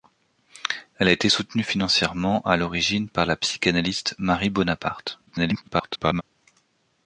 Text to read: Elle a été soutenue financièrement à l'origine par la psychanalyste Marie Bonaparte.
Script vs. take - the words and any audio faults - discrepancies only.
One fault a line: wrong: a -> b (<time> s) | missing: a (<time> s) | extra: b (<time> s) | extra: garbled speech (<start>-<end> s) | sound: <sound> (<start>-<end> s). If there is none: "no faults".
extra: garbled speech (5.3-6.2 s)